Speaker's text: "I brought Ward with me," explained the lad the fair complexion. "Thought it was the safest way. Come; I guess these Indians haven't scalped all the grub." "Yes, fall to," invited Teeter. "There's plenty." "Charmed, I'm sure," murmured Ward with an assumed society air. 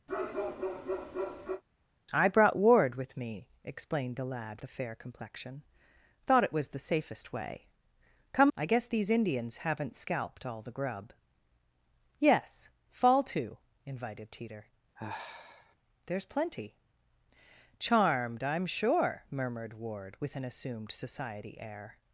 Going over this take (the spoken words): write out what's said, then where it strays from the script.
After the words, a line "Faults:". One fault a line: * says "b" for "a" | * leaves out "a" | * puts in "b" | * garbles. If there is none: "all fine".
"I brought Ward with me," explained the lad the fair complexion. "Thought it was the safest way. Come; I guess these Indians haven't scalped all the grub." "Yes, fall to," invited Teeter. "There's plenty." "Charmed, I'm sure," murmured Ward with an assumed society air.
Faults:
all fine